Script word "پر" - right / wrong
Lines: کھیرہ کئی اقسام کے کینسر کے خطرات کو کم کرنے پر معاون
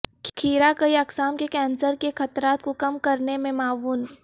wrong